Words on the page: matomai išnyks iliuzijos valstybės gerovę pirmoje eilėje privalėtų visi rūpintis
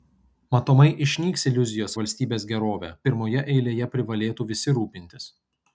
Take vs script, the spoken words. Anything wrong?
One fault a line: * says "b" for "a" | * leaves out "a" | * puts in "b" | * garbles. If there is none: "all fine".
all fine